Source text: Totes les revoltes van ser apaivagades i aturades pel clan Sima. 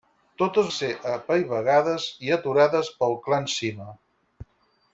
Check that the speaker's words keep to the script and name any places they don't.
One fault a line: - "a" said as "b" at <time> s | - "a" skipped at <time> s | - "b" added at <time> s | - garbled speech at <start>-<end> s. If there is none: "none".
- "les revoltes van" skipped at 0.7 s